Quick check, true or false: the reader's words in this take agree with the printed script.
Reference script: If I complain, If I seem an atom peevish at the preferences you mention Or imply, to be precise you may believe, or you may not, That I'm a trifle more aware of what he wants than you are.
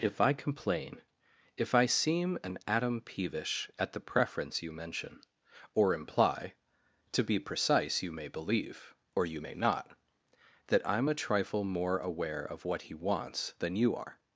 false